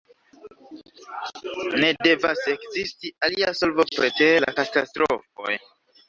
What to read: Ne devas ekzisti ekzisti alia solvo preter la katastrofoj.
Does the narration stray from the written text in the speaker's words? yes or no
yes